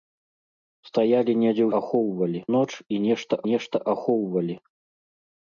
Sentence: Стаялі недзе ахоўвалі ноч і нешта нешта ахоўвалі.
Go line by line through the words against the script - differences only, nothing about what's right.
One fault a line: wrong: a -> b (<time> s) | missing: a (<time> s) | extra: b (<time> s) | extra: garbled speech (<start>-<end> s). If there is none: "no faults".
no faults